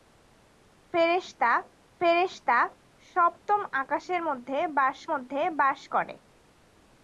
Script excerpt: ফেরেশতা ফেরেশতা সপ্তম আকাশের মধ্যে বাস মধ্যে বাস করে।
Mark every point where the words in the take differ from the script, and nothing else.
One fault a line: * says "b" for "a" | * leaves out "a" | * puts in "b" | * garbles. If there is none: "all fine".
all fine